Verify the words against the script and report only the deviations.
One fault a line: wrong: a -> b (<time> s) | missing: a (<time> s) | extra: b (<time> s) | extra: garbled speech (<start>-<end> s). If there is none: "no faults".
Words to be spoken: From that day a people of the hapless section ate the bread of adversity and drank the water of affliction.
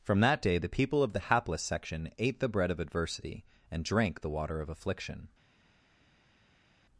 wrong: a -> the (0.6 s)